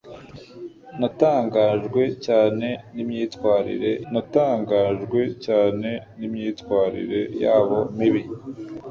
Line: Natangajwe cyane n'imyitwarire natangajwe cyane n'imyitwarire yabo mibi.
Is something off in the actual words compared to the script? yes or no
no